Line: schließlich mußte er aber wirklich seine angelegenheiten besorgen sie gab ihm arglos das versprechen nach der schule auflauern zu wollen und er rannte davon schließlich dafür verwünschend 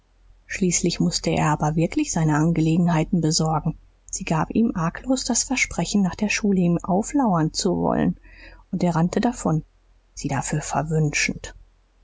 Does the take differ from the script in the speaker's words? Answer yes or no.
yes